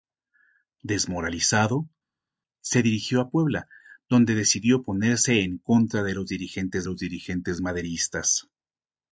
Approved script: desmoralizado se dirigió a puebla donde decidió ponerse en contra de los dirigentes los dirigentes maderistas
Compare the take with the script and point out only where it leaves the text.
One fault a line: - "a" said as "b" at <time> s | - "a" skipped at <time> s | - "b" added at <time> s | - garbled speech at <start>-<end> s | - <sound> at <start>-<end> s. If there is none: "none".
none